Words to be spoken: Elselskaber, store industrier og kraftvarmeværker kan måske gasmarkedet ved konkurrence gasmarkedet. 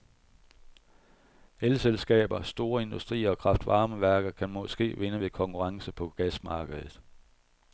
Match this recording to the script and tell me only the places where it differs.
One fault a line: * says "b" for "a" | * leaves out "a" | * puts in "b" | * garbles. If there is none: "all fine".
* says "vinde" for "gasmarkedet"
* puts in "på"